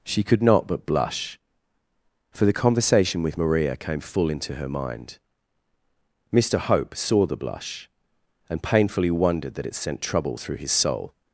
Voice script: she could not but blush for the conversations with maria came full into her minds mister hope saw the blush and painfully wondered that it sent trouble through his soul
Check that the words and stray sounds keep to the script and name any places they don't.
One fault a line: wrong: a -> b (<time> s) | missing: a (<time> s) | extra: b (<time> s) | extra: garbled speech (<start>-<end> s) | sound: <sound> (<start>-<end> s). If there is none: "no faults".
wrong: conversations -> conversation (2.5 s)
wrong: minds -> mind (4.7 s)